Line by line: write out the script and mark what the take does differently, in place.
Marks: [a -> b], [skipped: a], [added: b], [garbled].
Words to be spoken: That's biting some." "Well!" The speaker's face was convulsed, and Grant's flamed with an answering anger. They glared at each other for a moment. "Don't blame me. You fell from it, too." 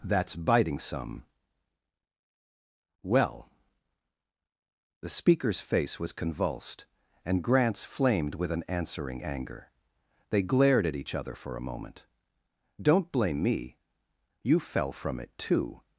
That's biting some." "Well!" The speaker's face was convulsed, and Grant's flamed with an answering anger. They glared at each other for a moment. "Don't blame me. You fell from it, too."